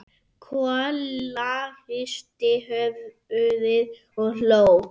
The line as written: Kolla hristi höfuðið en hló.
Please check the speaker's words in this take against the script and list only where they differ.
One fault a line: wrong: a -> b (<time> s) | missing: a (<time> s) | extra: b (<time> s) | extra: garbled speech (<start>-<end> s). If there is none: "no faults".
wrong: en -> og (4.2 s)